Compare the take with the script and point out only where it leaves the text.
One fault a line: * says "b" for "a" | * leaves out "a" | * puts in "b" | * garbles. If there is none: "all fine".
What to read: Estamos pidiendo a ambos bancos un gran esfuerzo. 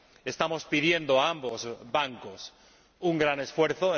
all fine